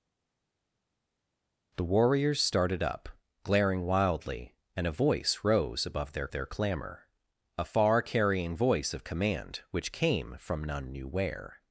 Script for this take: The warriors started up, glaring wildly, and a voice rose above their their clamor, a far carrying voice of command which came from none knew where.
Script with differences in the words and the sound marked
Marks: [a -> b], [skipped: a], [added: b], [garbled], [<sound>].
The warriors started up, glaring wildly, and a voice rose above their their clamor, a far carrying voice of command which came from none knew where.